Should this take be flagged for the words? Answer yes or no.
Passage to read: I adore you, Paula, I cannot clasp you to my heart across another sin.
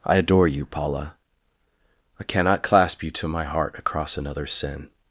no